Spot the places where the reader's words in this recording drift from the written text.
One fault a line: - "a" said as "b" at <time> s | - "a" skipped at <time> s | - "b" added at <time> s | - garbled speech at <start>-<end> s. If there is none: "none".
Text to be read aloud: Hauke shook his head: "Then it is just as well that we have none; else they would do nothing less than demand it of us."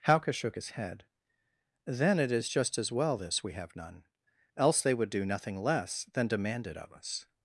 - "that" said as "this" at 3.1 s